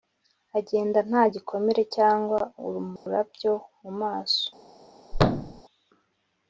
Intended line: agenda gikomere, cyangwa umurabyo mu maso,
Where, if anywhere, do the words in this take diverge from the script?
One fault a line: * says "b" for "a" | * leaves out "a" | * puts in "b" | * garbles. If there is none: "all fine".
* puts in "nta"